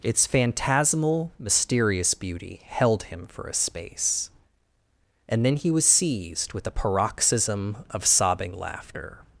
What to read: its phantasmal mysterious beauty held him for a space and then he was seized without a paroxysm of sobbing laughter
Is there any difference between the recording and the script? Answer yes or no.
yes